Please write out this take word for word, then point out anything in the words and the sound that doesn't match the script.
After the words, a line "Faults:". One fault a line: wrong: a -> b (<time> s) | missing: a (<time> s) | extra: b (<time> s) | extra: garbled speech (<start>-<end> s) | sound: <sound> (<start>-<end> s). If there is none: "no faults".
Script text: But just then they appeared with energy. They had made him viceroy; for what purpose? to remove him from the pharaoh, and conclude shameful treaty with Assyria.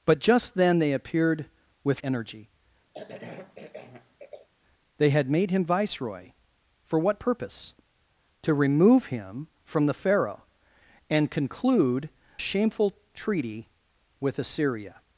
But just then they appeared with energy. They had made him viceroy; for what purpose? to remove him from the pharaoh, and conclude shameful treaty with Assyria.
Faults:
sound: cough (2.9-4.5 s)